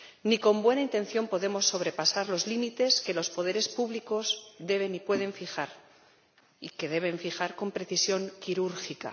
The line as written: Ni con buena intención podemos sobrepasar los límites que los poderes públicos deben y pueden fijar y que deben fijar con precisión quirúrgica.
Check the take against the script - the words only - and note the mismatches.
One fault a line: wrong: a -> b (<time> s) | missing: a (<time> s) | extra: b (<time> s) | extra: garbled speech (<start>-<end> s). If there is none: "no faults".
no faults